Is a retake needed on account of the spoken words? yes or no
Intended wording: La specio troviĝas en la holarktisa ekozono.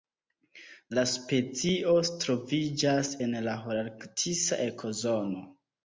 no